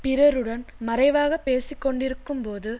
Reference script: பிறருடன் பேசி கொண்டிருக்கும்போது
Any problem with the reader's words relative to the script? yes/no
yes